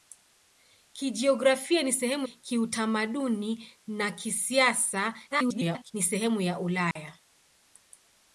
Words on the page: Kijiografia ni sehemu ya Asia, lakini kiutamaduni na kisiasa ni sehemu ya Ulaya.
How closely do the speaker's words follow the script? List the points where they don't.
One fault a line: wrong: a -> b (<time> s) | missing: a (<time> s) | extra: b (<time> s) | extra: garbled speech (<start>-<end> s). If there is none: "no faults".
missing: ya Asia lakini (2.3 s)
extra: garbled speech (5.3-5.9 s)